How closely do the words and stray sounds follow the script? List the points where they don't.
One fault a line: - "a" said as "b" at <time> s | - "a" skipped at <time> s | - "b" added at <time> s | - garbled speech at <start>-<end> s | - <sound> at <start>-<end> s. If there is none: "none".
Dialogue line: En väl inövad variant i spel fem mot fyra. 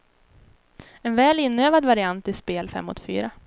none